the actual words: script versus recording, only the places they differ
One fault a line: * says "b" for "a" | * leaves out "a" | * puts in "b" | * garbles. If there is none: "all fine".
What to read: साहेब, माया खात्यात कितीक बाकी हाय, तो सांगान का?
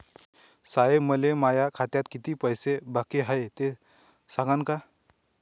* puts in "मले"
* puts in "पैसे"
* says "ते" for "तो"